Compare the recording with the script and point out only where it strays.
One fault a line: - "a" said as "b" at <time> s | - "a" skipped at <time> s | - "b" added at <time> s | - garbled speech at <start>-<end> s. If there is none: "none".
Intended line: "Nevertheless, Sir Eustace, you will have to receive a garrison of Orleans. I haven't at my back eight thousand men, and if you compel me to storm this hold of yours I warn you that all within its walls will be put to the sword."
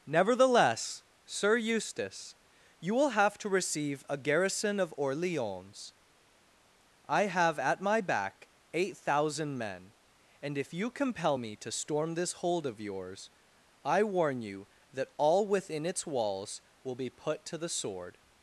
- "haven't" said as "have" at 7.2 s